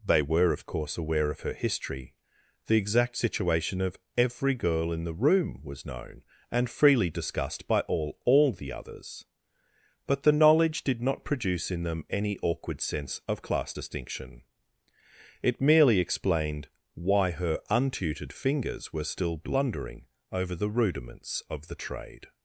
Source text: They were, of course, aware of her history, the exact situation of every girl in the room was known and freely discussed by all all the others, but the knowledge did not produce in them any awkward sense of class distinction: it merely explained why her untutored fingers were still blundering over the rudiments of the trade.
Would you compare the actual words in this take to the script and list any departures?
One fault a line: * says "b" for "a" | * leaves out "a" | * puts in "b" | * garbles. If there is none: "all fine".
all fine